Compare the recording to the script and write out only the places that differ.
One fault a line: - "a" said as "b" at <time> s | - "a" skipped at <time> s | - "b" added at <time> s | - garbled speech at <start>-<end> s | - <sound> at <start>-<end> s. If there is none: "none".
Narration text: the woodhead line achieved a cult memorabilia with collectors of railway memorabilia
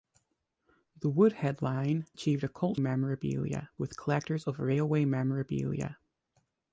none